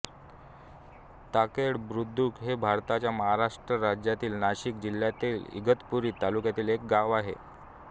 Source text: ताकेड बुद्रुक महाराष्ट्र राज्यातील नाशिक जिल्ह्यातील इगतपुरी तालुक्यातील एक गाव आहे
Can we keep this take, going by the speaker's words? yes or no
no